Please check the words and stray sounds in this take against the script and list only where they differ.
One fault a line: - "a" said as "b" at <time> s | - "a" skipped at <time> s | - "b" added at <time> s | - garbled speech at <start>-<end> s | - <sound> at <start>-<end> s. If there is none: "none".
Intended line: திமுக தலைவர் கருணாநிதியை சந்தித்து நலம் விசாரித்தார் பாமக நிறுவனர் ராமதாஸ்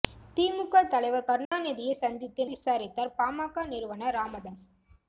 - dropout at 1.4-1.5 s
- "நலம்" skipped at 2.4 s